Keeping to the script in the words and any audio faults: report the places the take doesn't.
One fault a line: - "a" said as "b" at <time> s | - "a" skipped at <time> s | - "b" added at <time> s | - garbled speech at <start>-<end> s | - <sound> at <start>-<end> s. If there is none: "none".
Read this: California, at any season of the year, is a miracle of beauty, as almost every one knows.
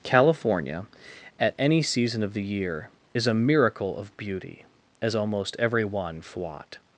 - "knows" said as "fwat" at 6.2 s